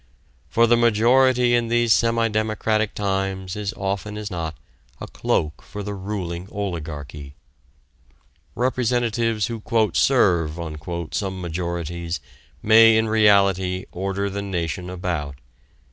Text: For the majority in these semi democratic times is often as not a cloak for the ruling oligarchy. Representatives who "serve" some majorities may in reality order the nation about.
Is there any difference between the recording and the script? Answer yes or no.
no